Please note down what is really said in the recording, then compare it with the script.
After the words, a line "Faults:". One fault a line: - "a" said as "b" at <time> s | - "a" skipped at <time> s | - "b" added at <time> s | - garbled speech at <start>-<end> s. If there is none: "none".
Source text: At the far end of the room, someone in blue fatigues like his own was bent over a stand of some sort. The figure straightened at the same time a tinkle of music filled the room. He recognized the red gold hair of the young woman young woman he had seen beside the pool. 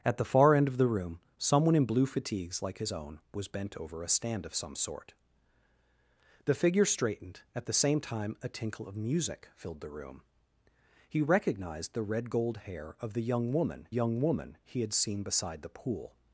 At the far end of the room, someone in blue fatigues like his own was bent over a stand of some sort. The figure straightened at the same time a tinkle of music filled the room. He recognized the red gold hair of the young woman young woman he had seen beside the pool.
Faults:
none